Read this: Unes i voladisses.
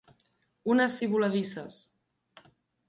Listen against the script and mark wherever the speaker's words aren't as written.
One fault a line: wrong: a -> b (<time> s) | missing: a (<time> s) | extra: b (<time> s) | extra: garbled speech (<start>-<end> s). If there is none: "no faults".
no faults